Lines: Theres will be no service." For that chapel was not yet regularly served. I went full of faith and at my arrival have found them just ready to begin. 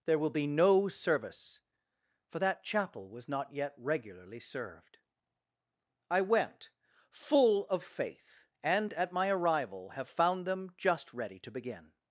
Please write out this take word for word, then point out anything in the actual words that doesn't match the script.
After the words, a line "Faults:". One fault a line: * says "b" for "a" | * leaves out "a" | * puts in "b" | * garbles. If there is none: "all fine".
There will be no service." For that chapel was not yet regularly served. I went full of faith and at my arrival have found them just ready to begin.
Faults:
* says "There" for "Theres"